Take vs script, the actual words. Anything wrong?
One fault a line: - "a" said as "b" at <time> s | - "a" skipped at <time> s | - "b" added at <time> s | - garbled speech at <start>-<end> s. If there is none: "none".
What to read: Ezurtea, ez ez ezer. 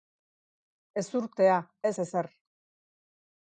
none